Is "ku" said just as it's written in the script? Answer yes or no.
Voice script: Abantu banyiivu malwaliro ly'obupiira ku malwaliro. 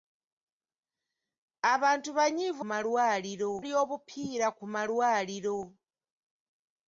yes